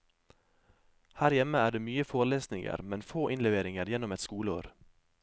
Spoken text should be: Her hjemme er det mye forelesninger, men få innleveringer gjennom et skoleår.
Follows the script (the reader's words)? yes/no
yes